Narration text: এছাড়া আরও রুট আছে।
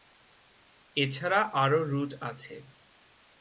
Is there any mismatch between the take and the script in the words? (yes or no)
no